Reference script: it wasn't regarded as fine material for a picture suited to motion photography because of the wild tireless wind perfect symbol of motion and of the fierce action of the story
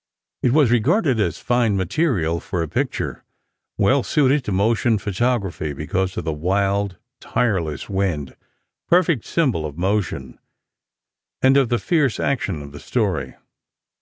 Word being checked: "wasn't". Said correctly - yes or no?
no